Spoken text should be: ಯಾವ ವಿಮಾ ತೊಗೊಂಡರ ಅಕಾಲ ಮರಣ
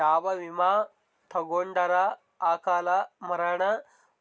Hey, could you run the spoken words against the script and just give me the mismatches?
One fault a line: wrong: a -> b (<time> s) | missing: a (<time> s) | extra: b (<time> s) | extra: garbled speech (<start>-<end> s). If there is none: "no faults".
no faults